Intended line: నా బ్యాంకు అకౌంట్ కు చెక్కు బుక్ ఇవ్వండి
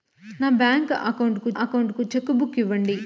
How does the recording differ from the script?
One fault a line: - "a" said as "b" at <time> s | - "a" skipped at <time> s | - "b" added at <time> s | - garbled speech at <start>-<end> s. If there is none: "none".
- "అకౌంట్ కు" added at 1.6 s